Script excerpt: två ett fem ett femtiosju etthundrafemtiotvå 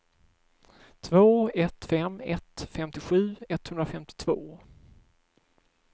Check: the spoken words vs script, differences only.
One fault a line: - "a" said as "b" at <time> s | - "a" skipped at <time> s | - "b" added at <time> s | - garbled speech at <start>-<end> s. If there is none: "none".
none